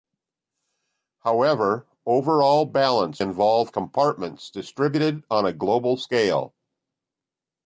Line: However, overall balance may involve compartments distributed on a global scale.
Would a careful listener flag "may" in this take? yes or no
yes